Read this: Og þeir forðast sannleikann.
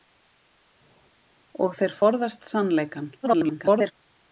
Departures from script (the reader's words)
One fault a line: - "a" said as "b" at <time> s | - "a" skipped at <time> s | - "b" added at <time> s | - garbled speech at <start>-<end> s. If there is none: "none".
- garbled speech at 3.2-3.9 s